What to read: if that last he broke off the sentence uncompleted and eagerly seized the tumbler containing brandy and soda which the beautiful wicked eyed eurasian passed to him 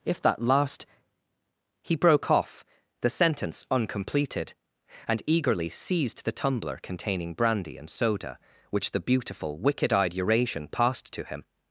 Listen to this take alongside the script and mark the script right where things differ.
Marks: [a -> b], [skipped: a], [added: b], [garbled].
if that last he broke off the sentence uncompleted and eagerly seized the tumbler containing brandy and soda which the beautiful wicked eyed eurasian passed to him